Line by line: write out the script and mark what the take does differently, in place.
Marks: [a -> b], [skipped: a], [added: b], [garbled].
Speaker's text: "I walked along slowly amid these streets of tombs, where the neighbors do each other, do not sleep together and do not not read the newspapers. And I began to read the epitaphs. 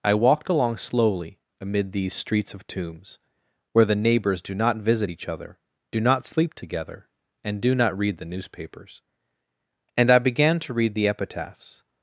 "I walked along slowly amid these streets of tombs, where the neighbors do [added: not visit] each other, do not sleep together and do not [skipped: not] read the newspapers. And I began to read the epitaphs.